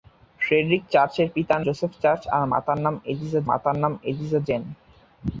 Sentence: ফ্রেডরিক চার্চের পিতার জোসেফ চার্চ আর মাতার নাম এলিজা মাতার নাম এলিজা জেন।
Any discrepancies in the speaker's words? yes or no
no